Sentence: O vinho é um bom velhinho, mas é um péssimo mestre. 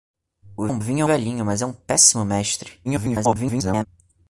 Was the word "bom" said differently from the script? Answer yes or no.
yes